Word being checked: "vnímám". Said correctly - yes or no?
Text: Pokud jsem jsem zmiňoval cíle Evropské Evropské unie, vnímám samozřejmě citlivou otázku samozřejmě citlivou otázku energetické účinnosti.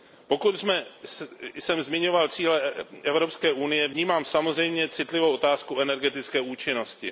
yes